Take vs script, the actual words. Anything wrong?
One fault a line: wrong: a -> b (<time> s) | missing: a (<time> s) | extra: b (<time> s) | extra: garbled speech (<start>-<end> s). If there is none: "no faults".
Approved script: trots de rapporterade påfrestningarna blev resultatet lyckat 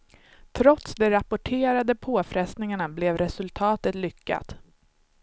no faults